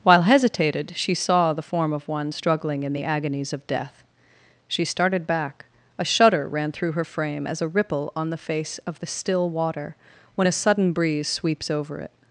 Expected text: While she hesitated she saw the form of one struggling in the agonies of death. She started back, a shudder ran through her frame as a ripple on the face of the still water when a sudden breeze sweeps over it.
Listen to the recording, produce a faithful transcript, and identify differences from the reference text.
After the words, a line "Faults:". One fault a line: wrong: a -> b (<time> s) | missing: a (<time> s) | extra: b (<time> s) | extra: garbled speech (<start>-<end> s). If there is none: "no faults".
While hesitated she saw the form of one struggling in the agonies of death. She started back, a shudder ran through her frame as a ripple on the face of the still water when a sudden breeze sweeps over it.
Faults:
missing: she (0.2 s)